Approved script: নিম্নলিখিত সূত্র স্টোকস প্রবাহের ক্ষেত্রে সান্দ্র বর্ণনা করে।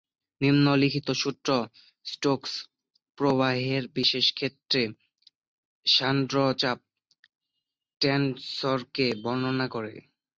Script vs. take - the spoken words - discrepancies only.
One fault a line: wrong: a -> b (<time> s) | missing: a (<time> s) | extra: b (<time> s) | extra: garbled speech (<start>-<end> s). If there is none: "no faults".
extra: বিশেষ (4.0 s)
extra: চাপ টেনসরকে (6.6 s)